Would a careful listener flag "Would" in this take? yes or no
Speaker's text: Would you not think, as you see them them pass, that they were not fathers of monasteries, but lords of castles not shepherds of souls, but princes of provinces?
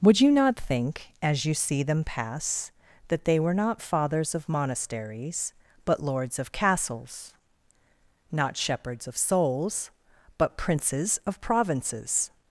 no